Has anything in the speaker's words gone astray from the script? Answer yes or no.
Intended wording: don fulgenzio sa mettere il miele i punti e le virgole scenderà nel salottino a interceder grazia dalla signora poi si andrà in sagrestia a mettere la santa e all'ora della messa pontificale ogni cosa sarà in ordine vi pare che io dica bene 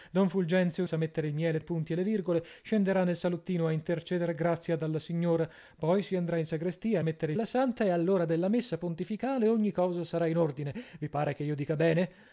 no